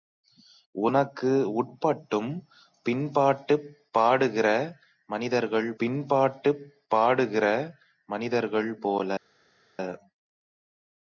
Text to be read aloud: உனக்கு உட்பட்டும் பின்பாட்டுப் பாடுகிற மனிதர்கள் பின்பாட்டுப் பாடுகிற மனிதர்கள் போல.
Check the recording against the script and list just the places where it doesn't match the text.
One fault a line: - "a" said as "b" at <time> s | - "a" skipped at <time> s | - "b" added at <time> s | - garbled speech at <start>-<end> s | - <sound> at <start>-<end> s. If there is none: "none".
none